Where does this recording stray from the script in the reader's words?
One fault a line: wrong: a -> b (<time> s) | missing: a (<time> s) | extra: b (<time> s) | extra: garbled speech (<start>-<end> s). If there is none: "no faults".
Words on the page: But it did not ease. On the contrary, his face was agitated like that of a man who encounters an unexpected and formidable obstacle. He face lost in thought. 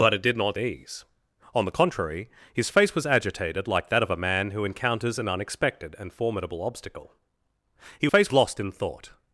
no faults